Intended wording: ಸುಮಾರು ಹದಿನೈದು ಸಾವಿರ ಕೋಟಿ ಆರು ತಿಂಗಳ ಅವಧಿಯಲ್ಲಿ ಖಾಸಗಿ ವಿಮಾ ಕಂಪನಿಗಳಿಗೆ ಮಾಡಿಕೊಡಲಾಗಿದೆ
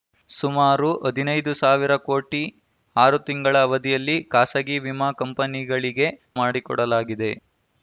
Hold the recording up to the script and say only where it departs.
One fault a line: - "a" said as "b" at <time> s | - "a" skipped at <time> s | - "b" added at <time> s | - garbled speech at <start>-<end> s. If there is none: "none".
none